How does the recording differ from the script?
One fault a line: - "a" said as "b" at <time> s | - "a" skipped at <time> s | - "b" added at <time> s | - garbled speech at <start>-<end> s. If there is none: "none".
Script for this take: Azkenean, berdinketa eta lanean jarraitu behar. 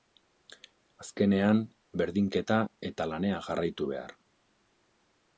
none